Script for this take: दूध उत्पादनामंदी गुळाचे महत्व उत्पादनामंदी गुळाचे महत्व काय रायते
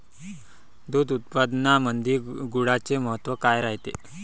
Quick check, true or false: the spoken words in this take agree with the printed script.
false